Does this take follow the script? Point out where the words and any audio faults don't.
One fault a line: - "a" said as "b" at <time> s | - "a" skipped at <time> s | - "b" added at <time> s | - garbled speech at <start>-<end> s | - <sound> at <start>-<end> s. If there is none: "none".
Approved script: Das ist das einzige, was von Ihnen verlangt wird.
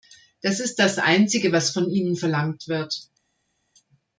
none